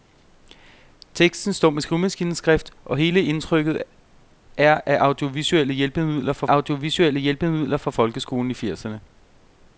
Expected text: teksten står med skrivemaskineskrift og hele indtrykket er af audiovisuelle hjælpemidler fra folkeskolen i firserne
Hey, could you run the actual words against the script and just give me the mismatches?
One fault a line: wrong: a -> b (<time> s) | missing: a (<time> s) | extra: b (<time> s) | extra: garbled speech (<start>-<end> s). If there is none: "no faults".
extra: audiovisuelle hjælpemidler fra (6.5 s)